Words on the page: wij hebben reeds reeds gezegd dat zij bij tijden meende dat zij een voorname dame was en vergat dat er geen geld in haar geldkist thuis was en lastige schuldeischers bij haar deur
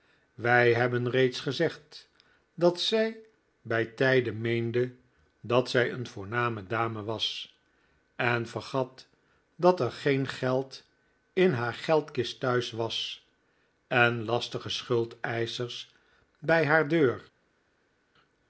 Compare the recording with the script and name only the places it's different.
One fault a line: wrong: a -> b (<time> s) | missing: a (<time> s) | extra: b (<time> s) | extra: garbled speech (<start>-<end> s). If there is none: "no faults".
missing: reeds (1.4 s)